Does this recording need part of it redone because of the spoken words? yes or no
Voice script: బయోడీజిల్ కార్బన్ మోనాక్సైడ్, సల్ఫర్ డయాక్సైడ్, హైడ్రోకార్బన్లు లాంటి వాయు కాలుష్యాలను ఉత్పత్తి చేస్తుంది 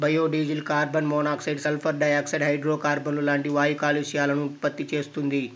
no